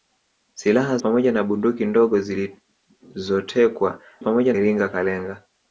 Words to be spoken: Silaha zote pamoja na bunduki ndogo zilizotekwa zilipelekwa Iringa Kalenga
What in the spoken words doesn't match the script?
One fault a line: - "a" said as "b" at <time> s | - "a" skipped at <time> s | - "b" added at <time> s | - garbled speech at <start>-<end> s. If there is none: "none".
- "zote" skipped at 1.0 s
- "zilipelekwa" said as "pamoja" at 4.2 s